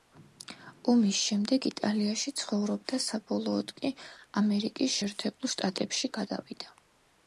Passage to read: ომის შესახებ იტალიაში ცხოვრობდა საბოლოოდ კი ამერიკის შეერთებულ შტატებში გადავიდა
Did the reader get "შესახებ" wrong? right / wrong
wrong